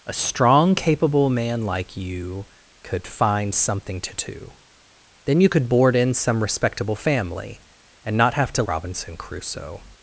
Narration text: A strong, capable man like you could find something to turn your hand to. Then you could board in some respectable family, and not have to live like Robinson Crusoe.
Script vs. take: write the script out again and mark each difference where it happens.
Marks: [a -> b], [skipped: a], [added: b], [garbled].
A strong, capable man like you could find something to [skipped: turn your hand] to. Then you could board in some respectable family, and not have to [skipped: live like] Robinson Crusoe.